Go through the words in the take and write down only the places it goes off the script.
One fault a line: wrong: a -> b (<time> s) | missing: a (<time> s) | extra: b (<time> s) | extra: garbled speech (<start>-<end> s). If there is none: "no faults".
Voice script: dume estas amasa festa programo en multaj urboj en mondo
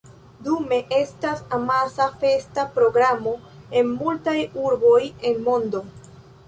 no faults